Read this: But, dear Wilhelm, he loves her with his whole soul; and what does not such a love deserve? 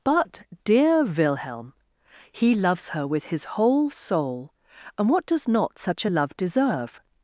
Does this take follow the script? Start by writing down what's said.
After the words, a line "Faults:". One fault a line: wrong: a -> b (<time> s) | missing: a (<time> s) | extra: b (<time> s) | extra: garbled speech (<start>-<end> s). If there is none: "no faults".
But, dear Wilhelm, he loves her with his whole soul; and what does not such a love deserve?
Faults:
no faults